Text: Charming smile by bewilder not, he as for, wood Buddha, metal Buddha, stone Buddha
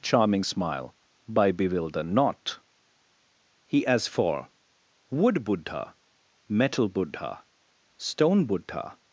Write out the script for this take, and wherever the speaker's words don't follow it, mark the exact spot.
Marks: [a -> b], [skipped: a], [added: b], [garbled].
Charming smile by bewilder not, he as for, wood Buddha, metal Buddha, stone Buddha